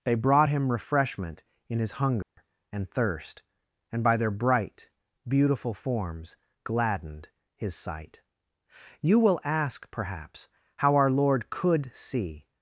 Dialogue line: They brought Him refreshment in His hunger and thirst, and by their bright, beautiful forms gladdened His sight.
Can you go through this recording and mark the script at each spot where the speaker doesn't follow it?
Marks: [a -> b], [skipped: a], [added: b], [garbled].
They brought Him refreshment in His hunger and thirst, and by their bright, beautiful forms gladdened His sight. [added: You will ask perhaps how our Lord could see]